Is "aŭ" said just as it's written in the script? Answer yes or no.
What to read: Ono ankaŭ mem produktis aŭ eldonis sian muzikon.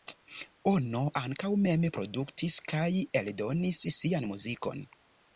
no